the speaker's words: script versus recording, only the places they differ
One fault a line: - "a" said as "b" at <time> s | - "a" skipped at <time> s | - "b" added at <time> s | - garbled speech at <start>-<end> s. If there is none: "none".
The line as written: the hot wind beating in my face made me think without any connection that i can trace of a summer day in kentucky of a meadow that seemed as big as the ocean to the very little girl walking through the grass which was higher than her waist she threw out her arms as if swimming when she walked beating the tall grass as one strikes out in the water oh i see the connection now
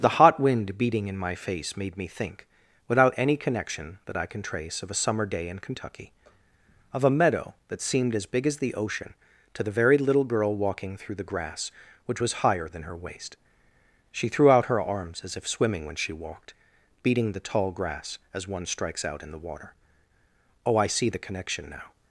none